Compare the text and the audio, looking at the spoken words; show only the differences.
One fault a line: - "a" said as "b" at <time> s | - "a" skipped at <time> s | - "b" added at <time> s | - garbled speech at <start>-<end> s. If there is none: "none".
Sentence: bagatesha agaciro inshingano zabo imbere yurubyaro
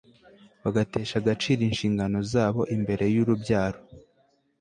none